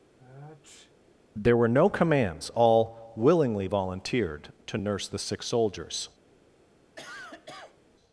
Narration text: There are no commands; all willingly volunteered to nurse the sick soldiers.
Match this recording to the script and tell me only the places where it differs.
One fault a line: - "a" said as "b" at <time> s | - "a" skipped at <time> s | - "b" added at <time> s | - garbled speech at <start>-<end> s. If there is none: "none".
- "are" said as "were" at 1.5 s